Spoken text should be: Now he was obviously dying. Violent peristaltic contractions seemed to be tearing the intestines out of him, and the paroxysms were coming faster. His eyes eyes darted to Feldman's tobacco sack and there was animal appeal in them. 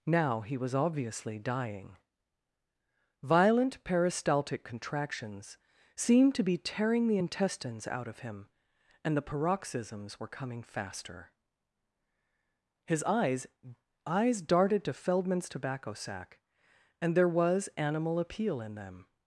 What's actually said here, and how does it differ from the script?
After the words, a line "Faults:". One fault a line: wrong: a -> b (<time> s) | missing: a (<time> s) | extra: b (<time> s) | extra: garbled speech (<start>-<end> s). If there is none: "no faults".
Now he was obviously dying. Violent peristaltic contractions seemed to be tearing the intestines out of him, and the paroxysms were coming faster. His eyes eyes darted to Feldman's tobacco sack and there was animal appeal in them.
Faults:
no faults